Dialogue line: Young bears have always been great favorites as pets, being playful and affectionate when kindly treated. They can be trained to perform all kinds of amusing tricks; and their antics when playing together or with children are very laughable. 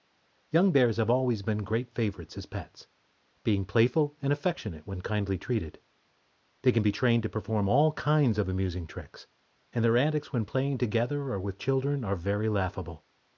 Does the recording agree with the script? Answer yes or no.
yes